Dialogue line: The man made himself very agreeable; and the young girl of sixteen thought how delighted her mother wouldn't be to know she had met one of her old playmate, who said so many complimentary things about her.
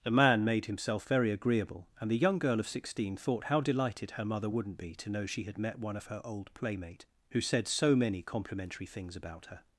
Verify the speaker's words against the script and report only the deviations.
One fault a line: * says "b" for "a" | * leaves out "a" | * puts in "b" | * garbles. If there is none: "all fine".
all fine